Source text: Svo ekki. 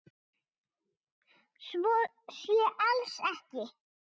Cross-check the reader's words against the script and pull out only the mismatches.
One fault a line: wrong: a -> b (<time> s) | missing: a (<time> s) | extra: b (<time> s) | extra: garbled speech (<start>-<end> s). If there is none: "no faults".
extra: sé alls (2.4 s)